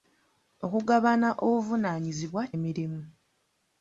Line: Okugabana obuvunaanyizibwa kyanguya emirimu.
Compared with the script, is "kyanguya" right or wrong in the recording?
wrong